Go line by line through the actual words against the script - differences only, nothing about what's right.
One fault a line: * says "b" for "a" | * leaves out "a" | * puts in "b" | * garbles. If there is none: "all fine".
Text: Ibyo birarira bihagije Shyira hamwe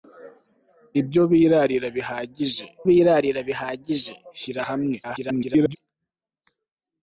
* puts in "birarira bihagije"
* garbles